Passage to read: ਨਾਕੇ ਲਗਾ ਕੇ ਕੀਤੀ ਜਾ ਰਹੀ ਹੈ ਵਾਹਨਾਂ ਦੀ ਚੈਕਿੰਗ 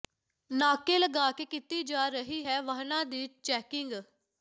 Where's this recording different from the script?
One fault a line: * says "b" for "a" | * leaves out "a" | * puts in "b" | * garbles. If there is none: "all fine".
all fine